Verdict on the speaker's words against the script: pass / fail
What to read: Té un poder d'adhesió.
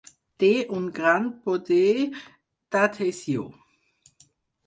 fail